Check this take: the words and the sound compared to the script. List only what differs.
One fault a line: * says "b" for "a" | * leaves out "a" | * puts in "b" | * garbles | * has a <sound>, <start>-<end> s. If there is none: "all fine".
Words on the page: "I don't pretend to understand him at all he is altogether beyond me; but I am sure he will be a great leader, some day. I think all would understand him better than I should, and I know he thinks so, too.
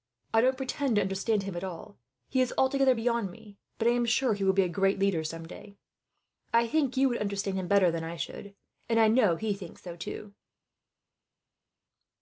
* says "you" for "all"